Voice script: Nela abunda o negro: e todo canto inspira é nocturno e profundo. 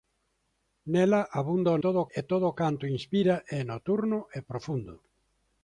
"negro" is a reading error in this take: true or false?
true